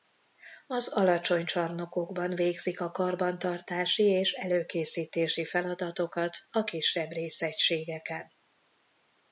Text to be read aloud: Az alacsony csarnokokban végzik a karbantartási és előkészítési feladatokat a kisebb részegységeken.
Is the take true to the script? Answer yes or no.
yes